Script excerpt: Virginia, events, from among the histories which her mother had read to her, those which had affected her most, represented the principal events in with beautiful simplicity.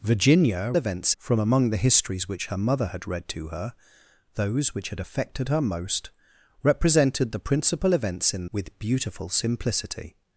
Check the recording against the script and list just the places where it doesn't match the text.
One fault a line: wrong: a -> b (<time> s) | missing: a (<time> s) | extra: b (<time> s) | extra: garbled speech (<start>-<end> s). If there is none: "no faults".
no faults